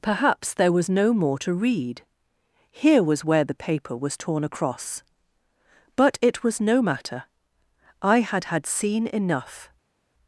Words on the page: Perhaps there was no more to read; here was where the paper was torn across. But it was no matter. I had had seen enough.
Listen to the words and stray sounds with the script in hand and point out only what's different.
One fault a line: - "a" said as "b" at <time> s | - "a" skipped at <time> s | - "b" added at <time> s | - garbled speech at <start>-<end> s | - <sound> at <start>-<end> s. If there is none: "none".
none